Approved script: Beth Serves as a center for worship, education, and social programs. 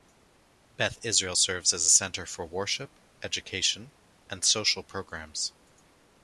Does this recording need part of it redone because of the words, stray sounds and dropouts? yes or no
yes